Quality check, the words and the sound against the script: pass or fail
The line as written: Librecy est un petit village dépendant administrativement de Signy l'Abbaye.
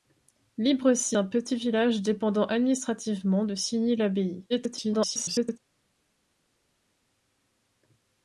fail